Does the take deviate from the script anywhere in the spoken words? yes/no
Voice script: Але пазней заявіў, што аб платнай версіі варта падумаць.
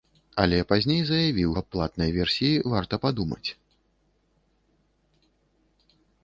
yes